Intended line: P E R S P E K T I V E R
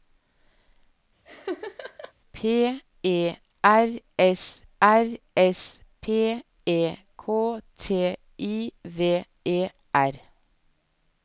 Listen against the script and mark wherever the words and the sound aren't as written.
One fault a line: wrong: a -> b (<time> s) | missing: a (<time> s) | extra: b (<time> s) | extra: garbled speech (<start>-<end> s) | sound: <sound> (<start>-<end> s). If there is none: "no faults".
sound: laugh (1.3-2.1 s)
extra: R S (4.8 s)